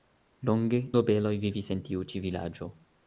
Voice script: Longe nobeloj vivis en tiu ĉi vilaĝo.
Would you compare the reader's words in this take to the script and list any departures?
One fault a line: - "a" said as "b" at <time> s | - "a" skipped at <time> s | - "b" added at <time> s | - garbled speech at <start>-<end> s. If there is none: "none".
none